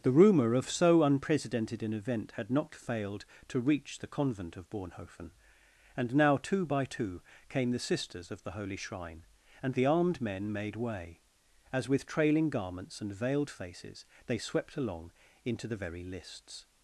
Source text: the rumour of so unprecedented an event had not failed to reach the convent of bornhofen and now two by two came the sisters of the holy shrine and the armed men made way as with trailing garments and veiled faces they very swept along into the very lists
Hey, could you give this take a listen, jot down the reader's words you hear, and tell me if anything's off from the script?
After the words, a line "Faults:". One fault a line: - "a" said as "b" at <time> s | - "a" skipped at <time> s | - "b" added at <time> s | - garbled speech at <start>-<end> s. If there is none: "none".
the rumour of so unprecedented an event had not failed to reach the convent of bornhofen and now two by two came the sisters of the holy shrine and the armed men made way as with trailing garments and veiled faces they swept along into the very lists
Faults:
- "very" skipped at 14.4 s